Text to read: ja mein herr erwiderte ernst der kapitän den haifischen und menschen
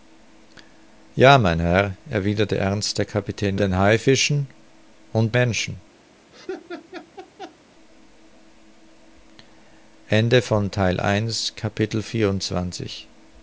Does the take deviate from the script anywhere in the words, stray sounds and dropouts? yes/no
yes